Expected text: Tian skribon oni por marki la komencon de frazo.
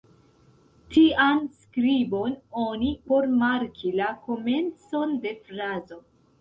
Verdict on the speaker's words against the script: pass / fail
pass